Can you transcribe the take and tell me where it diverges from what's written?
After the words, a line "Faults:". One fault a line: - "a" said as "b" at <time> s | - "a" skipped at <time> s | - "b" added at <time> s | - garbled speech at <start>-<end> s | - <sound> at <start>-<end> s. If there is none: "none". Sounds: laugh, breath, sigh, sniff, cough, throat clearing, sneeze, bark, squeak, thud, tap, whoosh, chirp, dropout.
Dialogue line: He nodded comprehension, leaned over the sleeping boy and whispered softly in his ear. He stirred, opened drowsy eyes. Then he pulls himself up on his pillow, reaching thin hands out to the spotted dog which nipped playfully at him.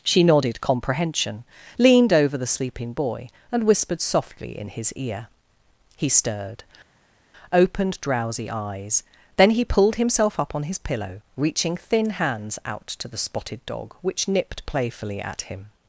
She nodded comprehension, leaned over the sleeping boy and whispered softly in his ear. He stirred, opened drowsy eyes. Then he pulled himself up on his pillow, reaching thin hands out to the spotted dog which nipped playfully at him.
Faults:
- "He" said as "She" at 0.0 s
- "pulls" said as "pulled" at 9.6 s